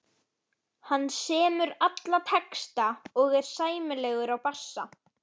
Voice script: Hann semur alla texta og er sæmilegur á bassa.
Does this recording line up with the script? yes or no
yes